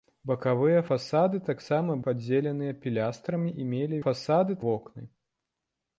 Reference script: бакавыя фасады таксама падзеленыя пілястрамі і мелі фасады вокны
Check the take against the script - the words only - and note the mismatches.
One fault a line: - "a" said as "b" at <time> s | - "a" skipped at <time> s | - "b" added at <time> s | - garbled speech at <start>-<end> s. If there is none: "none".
none